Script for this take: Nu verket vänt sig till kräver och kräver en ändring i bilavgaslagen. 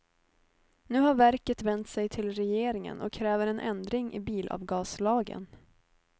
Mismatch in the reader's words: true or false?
true